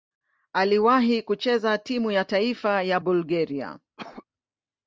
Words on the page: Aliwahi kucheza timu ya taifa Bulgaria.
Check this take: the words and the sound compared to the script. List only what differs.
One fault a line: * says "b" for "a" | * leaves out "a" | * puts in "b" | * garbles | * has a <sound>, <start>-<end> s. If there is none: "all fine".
* puts in "ya"
* has a cough, 4.0-4.3 s